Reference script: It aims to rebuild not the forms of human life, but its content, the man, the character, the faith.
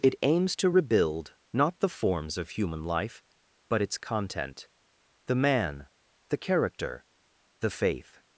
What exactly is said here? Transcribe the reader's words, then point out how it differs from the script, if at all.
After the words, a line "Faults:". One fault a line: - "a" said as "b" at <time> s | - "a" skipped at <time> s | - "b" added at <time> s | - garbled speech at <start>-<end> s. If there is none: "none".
It aims to rebuild not the forms of human life, but its content, the man, the character, the faith.
Faults:
none